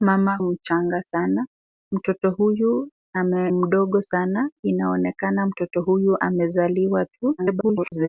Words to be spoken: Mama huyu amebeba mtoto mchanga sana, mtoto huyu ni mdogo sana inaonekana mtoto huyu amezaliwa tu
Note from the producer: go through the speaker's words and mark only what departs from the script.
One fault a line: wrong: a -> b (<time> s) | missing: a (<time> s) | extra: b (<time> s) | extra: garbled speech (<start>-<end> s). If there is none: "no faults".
missing: huyu amebeba mtoto (0.4 s)
missing: ni (2.9 s)
extra: garbled speech (7.4-8.1 s)